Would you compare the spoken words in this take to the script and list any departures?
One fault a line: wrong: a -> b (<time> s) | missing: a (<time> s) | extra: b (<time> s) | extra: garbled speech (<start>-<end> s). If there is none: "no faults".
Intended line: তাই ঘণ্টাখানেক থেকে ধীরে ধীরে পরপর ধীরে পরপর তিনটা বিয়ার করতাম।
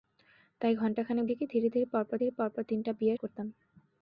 no faults